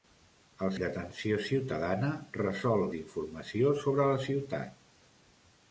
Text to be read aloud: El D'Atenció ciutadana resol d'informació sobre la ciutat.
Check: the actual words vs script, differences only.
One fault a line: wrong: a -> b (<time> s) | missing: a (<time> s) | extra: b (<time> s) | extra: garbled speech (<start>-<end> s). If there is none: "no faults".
no faults